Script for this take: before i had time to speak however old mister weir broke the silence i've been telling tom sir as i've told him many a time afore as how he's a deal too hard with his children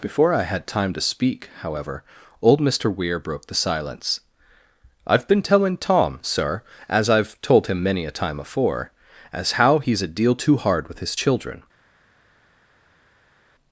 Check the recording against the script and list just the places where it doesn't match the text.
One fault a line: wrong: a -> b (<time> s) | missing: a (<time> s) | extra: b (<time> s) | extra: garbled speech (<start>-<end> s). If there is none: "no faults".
no faults